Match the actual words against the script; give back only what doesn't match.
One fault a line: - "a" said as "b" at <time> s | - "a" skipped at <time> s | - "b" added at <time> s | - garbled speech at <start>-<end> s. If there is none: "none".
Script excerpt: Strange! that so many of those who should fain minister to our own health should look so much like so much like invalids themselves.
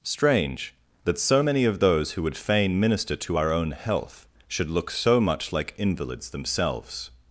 - "should" said as "would" at 2.2 s
- "so much like" skipped at 5.7 s